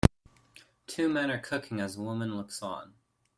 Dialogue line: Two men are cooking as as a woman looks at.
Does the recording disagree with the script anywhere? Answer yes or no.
yes